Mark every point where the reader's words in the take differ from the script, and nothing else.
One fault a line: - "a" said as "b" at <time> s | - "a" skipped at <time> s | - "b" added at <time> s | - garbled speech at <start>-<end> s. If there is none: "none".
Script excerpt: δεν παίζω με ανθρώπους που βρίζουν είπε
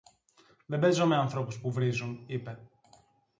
none